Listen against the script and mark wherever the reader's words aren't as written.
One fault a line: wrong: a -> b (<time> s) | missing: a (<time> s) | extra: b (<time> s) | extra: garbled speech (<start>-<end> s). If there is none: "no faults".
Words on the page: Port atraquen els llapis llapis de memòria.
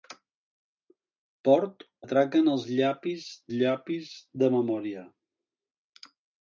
no faults